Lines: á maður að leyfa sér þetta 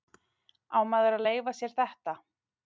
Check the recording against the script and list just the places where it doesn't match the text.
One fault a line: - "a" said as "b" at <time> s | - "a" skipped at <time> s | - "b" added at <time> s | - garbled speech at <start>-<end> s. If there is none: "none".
none